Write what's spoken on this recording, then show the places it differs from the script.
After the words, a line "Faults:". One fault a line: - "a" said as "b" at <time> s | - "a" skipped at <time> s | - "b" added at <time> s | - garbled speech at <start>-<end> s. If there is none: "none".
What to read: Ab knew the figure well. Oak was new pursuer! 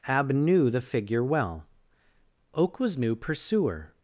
Ab knew the figure well. Oak was new pursuer!
Faults:
none